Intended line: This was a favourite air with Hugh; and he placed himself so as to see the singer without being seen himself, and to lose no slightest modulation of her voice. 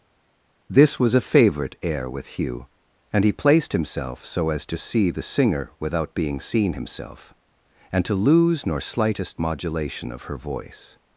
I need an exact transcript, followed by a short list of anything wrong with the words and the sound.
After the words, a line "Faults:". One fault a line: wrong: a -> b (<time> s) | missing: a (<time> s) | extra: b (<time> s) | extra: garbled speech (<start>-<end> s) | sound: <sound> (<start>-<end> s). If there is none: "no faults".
This was a favourite air with Hugh; and he placed himself so as to see the singer without being seen himself, and to lose nor slightest modulation of her voice.
Faults:
wrong: no -> nor (8.6 s)